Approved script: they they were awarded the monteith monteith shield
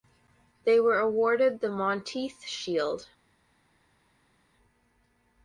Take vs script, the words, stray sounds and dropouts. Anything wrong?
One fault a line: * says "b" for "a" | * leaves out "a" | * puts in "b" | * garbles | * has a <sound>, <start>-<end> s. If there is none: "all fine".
* leaves out "they"
* leaves out "monteith"